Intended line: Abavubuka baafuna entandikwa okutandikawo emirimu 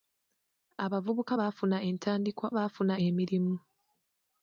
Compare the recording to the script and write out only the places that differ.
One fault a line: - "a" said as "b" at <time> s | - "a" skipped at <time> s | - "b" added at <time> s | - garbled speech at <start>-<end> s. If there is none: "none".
- "okutandikawo" said as "baafuna" at 2.6 s